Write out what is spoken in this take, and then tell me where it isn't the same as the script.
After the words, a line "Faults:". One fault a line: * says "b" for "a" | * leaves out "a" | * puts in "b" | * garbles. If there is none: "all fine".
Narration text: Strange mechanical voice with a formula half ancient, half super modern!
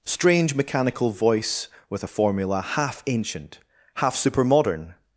Strange mechanical voice with a formula half ancient, half super modern!
Faults:
all fine